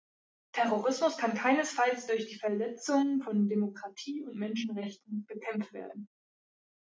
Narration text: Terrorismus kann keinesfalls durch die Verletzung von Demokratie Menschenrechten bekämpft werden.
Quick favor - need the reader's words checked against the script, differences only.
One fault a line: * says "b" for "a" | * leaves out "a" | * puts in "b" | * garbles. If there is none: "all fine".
* puts in "und"